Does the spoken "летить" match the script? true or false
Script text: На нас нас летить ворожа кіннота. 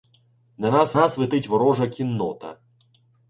true